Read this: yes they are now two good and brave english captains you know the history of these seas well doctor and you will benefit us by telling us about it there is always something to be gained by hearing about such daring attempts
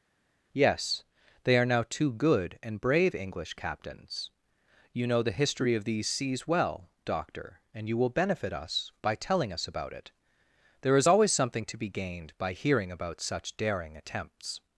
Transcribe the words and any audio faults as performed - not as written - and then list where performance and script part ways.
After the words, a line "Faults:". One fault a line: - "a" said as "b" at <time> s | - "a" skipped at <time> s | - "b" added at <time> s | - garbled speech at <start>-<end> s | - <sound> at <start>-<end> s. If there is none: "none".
yes they are now two good and brave english captains you know the history of these seas well doctor and you will benefit us by telling us about it there is always something to be gained by hearing about such daring attempts
Faults:
none